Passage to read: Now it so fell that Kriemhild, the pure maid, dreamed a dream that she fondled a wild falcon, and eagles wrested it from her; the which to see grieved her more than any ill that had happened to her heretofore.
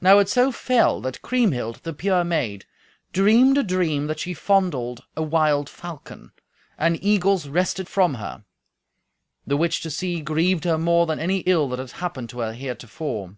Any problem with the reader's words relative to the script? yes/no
yes